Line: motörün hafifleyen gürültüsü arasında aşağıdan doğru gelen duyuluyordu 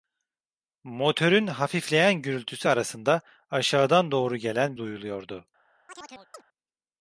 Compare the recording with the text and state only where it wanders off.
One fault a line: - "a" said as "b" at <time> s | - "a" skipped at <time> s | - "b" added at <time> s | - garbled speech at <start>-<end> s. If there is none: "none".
none